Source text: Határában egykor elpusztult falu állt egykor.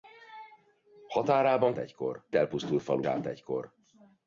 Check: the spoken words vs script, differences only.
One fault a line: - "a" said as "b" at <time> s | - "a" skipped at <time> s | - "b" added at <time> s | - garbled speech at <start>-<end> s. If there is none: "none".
none